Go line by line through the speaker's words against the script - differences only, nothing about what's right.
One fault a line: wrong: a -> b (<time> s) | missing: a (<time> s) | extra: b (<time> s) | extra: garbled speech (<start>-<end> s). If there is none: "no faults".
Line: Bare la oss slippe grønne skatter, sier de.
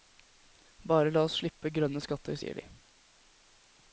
no faults